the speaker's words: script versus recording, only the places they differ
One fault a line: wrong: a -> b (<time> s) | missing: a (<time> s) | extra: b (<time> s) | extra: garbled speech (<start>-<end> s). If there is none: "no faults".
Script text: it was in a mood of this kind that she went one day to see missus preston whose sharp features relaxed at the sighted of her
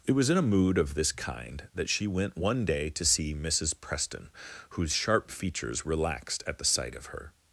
wrong: sighted -> sight (6.6 s)